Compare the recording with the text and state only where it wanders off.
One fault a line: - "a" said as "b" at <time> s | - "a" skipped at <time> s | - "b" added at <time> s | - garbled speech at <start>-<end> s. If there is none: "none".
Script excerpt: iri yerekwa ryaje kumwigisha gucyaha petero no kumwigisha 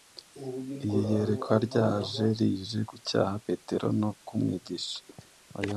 - "kumwigisha" said as "rije" at 2.4 s